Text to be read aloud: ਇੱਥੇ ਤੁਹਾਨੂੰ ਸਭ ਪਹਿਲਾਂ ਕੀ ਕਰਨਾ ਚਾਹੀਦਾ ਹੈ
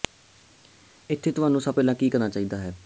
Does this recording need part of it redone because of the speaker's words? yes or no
no